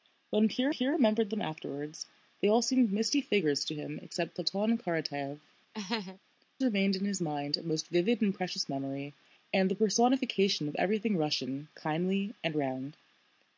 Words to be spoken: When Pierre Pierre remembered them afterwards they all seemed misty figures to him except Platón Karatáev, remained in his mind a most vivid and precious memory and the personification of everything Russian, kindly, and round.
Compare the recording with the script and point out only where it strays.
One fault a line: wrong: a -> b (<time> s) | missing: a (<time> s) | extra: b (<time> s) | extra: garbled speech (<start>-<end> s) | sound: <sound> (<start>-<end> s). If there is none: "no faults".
sound: laugh (5.7-6.2 s)